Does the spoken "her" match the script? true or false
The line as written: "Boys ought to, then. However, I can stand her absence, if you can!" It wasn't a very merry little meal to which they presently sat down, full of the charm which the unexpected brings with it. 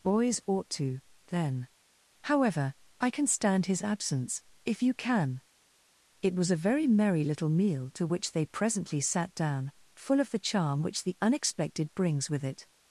false